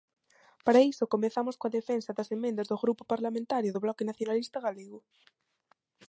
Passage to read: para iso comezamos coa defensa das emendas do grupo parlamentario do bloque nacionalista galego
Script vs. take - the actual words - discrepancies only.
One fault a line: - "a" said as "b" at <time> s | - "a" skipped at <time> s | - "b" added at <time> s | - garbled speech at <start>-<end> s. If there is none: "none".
none